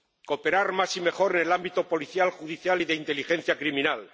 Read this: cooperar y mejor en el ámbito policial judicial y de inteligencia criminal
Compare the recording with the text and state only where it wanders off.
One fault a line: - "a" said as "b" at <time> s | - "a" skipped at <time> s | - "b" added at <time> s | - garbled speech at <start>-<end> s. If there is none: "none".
- "más" added at 0.7 s